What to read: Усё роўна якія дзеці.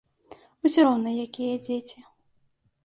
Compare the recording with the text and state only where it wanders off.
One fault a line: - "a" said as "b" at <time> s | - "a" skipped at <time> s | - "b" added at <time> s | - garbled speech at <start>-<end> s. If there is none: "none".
none